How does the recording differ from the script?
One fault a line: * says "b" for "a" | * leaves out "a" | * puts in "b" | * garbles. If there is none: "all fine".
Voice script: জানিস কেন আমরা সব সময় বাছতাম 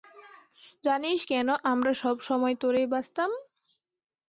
* puts in "তোরেই"